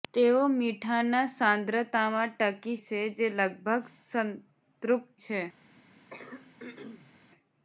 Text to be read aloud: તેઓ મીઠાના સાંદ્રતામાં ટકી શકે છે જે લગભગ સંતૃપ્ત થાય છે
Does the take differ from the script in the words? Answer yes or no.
yes